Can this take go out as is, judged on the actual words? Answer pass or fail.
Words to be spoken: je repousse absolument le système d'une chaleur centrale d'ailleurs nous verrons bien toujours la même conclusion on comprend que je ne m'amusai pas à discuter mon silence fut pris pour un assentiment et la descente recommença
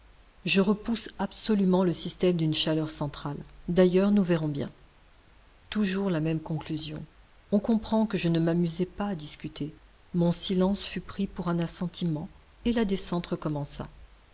pass